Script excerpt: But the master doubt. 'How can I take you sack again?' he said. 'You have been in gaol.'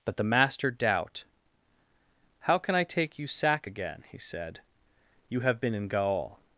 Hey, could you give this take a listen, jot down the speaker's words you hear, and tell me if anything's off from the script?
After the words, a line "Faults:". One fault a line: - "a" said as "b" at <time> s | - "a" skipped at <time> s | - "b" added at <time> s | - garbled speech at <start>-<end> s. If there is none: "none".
But the master doubt. 'How can I take you sack again?' he said. 'You have been in gaol.'
Faults:
none